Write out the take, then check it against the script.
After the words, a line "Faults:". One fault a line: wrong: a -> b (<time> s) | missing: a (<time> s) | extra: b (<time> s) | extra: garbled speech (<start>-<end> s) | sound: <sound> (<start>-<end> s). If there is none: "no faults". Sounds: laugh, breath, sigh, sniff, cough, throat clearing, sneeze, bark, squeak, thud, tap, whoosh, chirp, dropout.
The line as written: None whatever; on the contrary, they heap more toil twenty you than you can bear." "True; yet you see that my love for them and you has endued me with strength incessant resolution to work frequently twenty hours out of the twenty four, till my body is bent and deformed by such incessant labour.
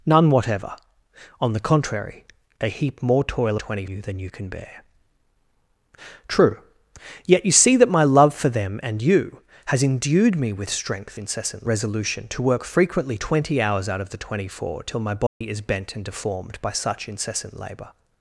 None whatever; on the contrary, they heap more toil twenty you than you can bear." "True; yet you see that my love for them and you has endued me with strength incessant resolution to work frequently twenty hours out of the twenty four, till my body is bent and deformed by such incessant labour.
Faults:
sound: dropout (15.3-15.4 s)